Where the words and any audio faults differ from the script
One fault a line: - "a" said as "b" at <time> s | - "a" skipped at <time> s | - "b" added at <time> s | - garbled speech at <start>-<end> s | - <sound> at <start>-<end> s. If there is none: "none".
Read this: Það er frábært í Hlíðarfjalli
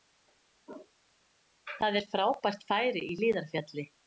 - "færi" added at 2.7 s